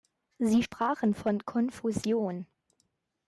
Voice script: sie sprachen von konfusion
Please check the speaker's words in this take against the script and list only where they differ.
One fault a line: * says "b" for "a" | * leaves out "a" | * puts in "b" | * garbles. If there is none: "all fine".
all fine